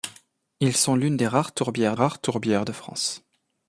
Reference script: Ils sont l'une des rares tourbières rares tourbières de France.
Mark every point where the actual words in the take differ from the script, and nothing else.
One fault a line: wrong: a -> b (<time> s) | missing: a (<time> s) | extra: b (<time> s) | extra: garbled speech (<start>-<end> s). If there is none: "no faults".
no faults